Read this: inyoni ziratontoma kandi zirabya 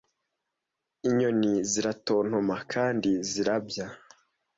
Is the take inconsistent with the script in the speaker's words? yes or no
no